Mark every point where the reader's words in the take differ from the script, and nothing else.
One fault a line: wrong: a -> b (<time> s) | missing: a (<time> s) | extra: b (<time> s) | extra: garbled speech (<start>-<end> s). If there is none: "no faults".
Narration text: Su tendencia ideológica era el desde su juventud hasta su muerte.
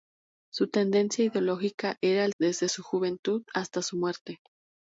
no faults